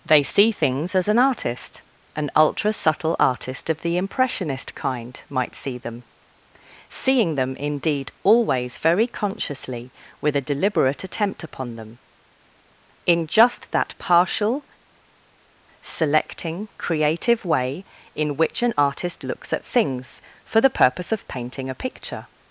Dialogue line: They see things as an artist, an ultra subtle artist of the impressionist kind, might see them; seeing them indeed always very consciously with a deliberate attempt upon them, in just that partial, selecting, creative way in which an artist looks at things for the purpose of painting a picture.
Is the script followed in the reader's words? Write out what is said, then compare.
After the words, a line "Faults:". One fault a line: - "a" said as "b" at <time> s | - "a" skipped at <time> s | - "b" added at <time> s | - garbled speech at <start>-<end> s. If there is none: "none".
They see things as an artist, an ultra subtle artist of the impressionist kind, might see them; seeing them indeed always very consciously with a deliberate attempt upon them, in just that partial, selecting, creative way in which an artist looks at things for the purpose of painting a picture.
Faults:
none